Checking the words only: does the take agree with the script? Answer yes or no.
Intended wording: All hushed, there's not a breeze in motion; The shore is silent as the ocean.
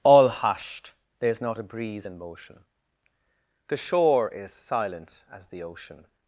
yes